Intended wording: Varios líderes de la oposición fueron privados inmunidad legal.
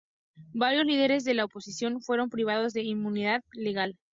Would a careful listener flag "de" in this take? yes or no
no